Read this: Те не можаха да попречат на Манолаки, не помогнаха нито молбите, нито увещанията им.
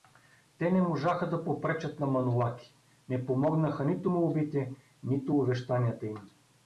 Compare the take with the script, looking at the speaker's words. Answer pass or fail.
pass